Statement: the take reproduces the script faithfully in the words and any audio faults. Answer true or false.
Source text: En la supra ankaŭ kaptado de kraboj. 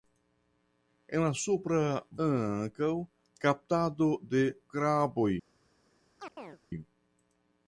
false